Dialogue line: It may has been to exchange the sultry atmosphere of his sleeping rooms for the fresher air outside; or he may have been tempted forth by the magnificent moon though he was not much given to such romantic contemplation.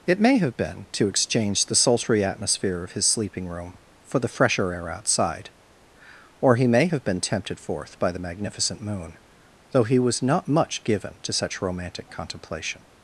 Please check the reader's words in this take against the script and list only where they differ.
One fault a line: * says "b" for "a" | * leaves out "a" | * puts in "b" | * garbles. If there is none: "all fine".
* says "have" for "has"
* says "room" for "rooms"